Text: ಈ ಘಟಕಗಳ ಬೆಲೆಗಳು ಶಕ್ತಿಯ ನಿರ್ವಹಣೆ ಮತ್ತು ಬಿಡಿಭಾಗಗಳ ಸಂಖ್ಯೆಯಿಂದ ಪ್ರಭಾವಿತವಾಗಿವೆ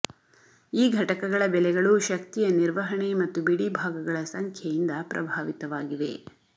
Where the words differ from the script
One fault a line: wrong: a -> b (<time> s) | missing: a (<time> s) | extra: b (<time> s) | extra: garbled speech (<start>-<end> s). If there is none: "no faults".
no faults